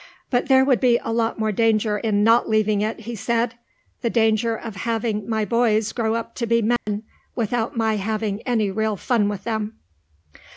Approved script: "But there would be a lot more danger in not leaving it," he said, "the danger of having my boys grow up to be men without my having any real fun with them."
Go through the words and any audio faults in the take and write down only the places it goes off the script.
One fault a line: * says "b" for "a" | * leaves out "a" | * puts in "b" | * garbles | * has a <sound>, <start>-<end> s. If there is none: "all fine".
* has a dropout, 6.8-6.9 s